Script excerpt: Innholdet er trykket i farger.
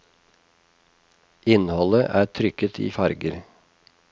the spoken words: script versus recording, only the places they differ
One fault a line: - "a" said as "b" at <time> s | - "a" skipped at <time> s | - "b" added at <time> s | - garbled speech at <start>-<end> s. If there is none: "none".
none